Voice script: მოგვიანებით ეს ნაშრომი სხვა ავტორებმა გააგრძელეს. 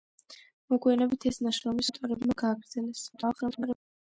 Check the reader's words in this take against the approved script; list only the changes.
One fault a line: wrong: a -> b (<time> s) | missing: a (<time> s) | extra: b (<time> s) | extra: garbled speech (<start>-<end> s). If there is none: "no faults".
missing: სხვა (1.9 s)
extra: garbled speech (3.1-3.8 s)